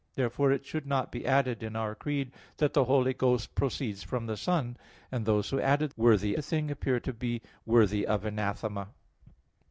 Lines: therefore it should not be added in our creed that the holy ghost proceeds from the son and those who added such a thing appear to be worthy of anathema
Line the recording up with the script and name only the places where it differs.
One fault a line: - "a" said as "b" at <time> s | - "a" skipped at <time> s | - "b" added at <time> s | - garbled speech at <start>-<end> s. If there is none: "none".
- "such" said as "worthy" at 6.0 s